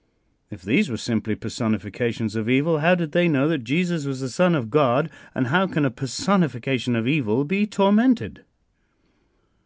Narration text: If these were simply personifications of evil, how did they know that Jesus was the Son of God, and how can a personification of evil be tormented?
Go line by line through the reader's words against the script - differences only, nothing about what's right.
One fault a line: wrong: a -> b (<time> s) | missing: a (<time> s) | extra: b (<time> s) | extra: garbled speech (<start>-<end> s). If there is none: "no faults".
no faults